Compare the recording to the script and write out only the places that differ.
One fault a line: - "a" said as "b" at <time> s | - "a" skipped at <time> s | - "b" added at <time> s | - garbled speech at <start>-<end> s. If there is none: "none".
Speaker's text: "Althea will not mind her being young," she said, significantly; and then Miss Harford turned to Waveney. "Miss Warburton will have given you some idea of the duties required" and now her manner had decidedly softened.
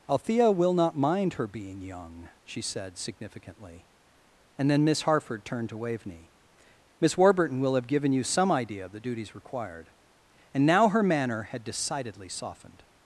none